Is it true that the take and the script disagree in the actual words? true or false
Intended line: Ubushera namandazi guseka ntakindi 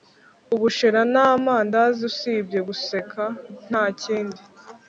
true